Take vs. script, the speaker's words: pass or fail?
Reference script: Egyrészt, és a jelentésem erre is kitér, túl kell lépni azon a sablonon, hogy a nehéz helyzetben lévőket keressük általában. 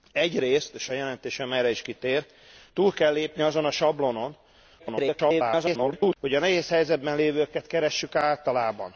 fail